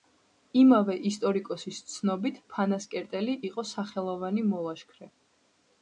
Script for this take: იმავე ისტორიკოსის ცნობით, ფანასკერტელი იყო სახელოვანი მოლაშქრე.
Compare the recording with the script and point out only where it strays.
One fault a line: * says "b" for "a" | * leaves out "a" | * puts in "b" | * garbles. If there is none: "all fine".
all fine